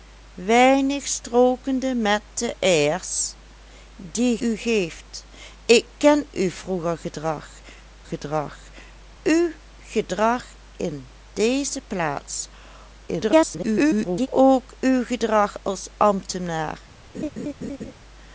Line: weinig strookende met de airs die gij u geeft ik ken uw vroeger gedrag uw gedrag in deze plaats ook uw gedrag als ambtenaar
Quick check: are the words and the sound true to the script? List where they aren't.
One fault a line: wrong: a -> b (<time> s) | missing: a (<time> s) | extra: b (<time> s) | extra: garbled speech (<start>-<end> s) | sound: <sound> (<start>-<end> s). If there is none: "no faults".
missing: gij (4.4 s)
extra: gedrag (8.0 s)
extra: garbled speech (13.1-14.3 s)
sound: laugh (17.1-17.9 s)